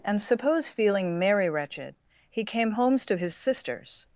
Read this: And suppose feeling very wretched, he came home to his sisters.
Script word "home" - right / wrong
wrong